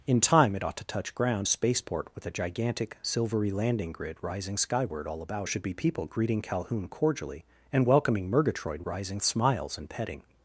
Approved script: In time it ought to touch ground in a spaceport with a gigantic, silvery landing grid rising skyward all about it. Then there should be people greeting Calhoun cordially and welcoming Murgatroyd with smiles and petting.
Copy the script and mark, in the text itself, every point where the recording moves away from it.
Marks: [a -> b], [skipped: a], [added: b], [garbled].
In time it ought to touch ground [skipped: in] a spaceport with a gigantic, silvery landing grid rising skyward all about [skipped: it. Then there] should be people greeting Calhoun cordially and welcoming Murgatroyd [with -> rising] smiles and petting.